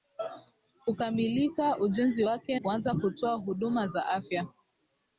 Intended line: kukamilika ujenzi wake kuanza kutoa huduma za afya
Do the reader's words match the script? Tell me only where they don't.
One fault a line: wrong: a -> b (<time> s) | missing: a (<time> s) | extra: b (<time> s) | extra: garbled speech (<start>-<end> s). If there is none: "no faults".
no faults